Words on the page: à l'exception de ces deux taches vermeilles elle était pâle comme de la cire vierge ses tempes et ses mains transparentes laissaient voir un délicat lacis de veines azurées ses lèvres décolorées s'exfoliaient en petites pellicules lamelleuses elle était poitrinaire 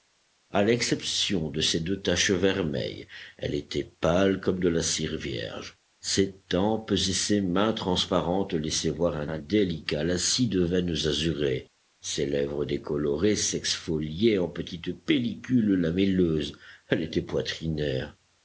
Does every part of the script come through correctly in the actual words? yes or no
no